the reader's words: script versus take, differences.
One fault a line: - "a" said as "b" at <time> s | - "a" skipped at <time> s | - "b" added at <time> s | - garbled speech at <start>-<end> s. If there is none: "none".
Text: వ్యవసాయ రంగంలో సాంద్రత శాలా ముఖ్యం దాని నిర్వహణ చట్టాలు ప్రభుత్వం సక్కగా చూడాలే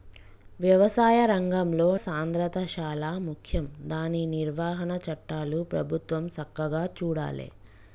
none